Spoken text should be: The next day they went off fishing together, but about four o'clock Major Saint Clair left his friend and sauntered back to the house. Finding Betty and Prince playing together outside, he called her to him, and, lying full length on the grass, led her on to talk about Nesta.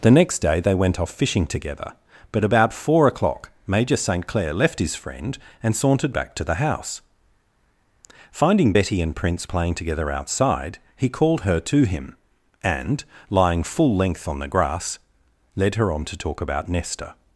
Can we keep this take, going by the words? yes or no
yes